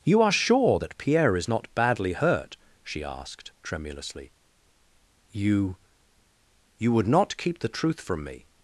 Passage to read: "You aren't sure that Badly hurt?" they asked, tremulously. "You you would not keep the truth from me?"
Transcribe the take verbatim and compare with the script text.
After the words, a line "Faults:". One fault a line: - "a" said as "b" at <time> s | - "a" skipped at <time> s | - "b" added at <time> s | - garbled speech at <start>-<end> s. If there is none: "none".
"You are sure that Pierre is not badly hurt?" she asked, tremulously. "You you would not keep the truth from me?"
Faults:
- "aren't" said as "are" at 0.2 s
- "Pierre is not" added at 1.0 s
- "they" said as "she" at 2.8 s